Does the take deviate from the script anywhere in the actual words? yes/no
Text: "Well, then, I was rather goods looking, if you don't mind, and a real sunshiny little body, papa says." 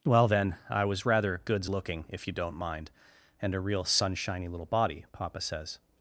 no